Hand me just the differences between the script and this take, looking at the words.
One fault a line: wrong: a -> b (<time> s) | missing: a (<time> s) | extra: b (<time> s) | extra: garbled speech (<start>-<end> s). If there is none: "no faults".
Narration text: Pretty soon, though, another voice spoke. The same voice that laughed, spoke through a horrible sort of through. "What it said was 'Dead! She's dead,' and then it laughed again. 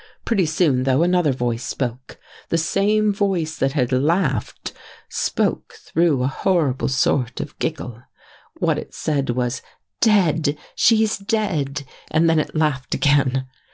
extra: had (3.7 s)
wrong: through -> giggle (7.6 s)